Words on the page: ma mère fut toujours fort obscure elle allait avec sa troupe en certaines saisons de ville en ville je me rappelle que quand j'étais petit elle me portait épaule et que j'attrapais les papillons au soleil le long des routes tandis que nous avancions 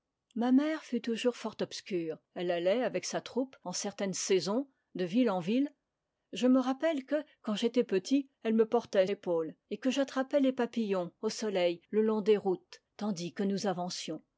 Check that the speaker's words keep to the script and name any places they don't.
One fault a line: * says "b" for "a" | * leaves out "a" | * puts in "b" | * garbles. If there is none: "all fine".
all fine